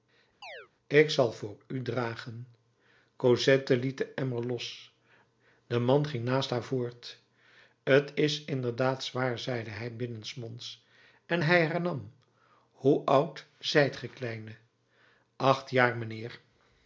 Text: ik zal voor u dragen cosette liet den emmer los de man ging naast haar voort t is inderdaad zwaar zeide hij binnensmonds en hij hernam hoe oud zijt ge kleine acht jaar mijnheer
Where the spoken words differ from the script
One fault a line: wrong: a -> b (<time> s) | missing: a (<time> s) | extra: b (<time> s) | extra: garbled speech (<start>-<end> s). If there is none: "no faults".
no faults